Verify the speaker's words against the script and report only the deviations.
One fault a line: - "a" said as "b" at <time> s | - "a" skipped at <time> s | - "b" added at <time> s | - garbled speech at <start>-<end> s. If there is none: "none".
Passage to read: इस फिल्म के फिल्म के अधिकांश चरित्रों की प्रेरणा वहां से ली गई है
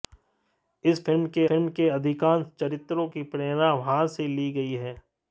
none